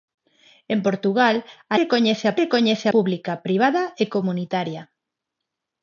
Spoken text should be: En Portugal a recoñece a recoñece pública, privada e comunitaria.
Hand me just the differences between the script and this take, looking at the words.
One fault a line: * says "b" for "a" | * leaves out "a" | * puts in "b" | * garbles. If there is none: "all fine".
all fine